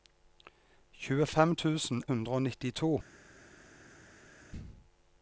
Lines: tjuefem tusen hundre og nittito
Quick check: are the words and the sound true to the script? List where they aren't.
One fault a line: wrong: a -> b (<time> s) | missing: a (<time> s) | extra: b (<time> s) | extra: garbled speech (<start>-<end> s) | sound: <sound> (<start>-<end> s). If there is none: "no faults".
no faults